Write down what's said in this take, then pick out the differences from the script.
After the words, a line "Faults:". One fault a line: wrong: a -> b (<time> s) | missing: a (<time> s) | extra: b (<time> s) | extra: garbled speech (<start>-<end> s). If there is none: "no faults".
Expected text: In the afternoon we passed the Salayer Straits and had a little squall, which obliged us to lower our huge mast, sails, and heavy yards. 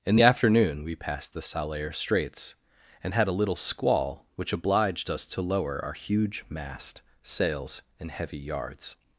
In the afternoon we passed the Salayer Straits and had a little squall, which obliged us to lower our huge mast, sails, and heavy yards.
Faults:
no faults